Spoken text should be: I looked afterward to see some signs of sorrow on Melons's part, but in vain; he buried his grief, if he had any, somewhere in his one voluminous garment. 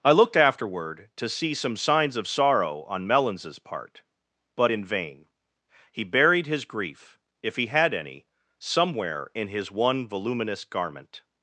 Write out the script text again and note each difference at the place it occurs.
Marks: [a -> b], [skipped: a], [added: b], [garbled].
I looked afterward to see some signs of sorrow on Melons's part, but in vain; he buried his grief, if he had any, somewhere in his one voluminous garment.